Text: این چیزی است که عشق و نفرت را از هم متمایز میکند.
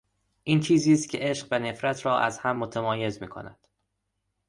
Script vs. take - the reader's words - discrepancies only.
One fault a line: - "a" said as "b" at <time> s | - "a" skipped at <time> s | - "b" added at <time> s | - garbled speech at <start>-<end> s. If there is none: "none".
none